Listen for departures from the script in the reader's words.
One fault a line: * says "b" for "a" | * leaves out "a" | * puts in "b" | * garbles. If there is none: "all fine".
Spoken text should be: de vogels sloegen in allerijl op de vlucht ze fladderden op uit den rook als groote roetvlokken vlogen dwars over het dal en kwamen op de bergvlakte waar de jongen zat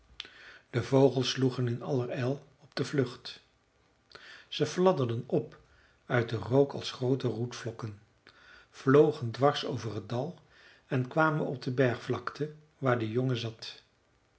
all fine